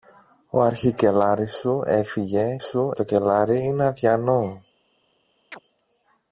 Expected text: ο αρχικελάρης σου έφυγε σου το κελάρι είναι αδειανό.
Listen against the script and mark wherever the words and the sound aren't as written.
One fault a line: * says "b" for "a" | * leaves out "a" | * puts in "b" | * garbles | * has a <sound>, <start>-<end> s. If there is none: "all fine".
* has a chirp, 5.5-5.6 s